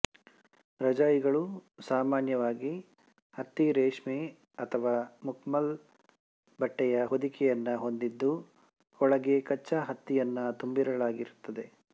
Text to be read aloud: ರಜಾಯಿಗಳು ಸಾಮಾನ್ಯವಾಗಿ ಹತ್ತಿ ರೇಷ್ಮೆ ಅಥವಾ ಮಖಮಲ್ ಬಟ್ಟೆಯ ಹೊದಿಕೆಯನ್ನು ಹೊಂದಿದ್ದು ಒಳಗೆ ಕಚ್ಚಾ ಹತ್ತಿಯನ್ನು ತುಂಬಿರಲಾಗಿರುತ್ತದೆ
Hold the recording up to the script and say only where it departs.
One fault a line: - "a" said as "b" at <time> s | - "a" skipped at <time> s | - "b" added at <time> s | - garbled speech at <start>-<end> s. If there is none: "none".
none